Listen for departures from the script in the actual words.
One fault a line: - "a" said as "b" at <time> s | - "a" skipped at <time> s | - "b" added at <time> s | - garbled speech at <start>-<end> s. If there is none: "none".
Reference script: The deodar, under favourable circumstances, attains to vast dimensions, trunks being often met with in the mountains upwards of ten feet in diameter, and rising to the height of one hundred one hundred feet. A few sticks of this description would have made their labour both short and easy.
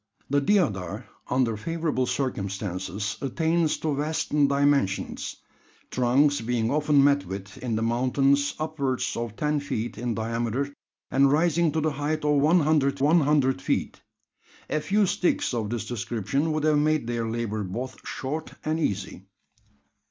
none